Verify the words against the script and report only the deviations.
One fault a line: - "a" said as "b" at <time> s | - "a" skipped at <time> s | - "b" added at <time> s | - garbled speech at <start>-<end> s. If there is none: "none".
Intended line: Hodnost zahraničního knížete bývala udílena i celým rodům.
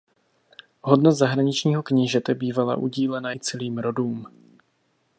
none